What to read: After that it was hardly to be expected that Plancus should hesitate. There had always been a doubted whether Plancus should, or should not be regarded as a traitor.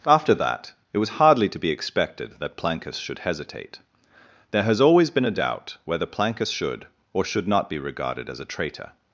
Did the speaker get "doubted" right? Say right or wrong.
wrong